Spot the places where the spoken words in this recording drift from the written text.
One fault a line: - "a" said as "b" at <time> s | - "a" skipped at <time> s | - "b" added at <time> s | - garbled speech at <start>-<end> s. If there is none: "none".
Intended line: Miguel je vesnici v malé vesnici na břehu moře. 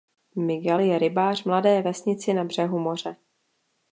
- "vesnici" said as "rybář" at 1.0 s